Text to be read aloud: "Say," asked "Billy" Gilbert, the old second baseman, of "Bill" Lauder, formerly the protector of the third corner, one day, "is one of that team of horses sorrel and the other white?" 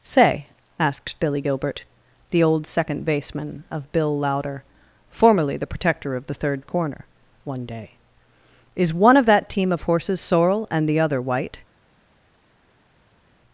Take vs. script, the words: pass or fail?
pass